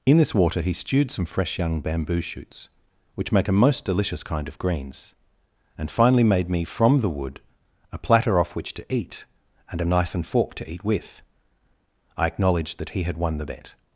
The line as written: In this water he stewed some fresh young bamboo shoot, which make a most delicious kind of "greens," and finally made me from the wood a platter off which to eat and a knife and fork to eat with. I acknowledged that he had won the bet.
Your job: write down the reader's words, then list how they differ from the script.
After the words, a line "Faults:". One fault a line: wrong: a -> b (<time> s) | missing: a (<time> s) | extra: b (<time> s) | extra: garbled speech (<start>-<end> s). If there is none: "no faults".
In this water he stewed some fresh young bamboo shoots, which make a most delicious kind of "greens," and finally made me from the wood a platter off which to eat and a knife and fork to eat with. I acknowledged that he had won the bet.
Faults:
wrong: shoot -> shoots (2.2 s)